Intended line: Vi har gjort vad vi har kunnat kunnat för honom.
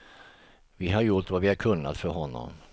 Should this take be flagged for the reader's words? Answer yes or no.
yes